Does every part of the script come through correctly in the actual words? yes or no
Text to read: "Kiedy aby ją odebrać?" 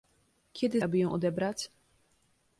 yes